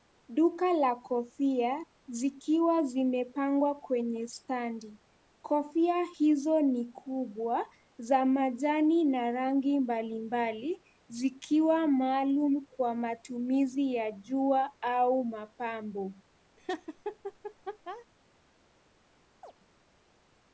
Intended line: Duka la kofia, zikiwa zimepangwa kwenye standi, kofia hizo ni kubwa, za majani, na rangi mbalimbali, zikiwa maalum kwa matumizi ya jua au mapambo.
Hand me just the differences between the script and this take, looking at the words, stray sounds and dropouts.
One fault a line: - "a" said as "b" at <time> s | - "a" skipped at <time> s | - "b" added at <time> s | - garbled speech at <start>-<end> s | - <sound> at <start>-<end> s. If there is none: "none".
- laugh at 16.6-18.1 s
- chirp at 19.4-19.5 s